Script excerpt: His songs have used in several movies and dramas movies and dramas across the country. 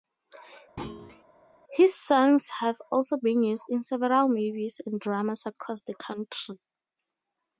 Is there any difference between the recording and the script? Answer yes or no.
yes